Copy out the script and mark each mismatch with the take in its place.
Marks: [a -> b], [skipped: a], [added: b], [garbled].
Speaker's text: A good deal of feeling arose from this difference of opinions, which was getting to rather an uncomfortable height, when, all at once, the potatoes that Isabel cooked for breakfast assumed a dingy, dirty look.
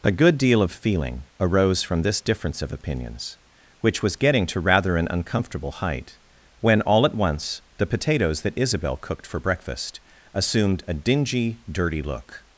A good deal of feeling arose from this difference of opinions, which was getting to rather an uncomfortable height, when, all at once, the potatoes that Isabel cooked for breakfast assumed a dingy, dirty look.